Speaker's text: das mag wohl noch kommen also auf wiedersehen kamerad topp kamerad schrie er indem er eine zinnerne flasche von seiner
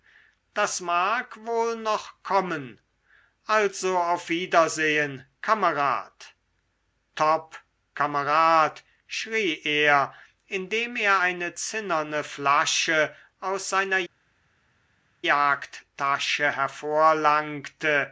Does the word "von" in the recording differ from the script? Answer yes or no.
yes